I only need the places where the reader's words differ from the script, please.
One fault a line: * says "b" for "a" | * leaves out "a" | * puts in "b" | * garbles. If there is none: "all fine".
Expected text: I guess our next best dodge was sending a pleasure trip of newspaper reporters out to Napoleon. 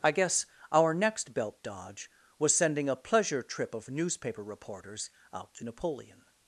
* says "belt" for "best"